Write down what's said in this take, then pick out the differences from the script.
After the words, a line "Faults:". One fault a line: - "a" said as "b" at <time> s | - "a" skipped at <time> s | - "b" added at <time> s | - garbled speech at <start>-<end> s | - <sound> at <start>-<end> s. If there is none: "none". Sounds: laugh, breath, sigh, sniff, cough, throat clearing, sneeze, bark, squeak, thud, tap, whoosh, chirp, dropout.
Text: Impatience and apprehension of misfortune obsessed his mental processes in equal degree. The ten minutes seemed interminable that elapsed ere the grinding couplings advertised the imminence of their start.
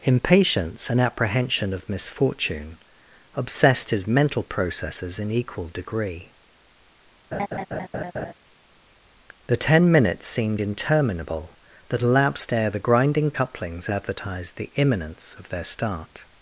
Impatience and apprehension of misfortune obsessed his mental processes in equal degree. The ten minutes seemed interminable that elapsed ere the grinding couplings advertised the imminence of their start.
Faults:
- laugh at 7.3-8.3 s